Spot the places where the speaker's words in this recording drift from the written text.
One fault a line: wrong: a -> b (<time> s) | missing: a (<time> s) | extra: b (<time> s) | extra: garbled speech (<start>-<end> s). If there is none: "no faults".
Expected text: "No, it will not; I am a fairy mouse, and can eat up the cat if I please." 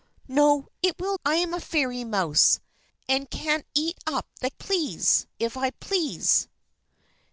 missing: not (1.2 s)
wrong: cat -> please (4.5 s)